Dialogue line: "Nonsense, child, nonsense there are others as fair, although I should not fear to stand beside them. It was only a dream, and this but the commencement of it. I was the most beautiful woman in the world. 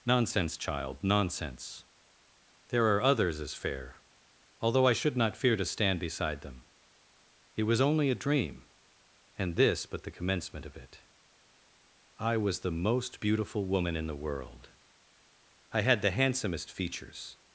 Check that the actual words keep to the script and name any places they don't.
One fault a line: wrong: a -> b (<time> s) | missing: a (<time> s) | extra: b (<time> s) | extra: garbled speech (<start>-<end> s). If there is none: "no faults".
extra: I had the handsomest features (15.7 s)